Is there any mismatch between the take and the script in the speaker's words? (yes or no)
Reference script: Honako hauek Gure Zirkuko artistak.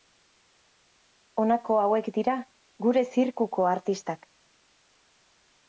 yes